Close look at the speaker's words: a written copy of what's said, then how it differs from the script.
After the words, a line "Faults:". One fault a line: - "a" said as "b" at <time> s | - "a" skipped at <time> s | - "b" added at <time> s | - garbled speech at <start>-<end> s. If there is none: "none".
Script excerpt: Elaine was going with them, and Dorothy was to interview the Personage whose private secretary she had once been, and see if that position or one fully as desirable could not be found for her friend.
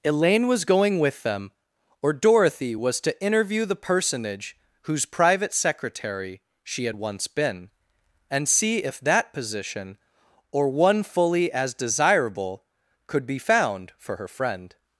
Elaine was going with them, or Dorothy was to interview the Personage whose private secretary she had once been, and see if that position or one fully as desirable could be found for her friend.
Faults:
- "and" said as "or" at 2.0 s
- "not" skipped at 13.3 s